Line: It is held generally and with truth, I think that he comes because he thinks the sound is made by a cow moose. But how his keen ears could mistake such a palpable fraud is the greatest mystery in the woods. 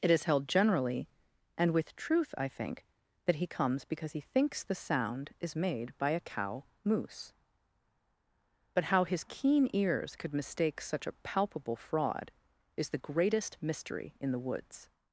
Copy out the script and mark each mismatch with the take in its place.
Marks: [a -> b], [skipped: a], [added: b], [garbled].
It is held generally and with truth, I think that he comes because he thinks the sound is made by a cow moose. But how his keen ears could mistake such a palpable fraud is the greatest mystery in the woods.